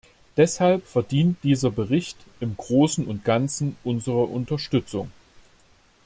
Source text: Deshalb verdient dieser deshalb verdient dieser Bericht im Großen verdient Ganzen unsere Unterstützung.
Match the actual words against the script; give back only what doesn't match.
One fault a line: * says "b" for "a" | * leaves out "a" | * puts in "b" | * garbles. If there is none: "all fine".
* leaves out "deshalb verdient dieser"
* says "und" for "verdient"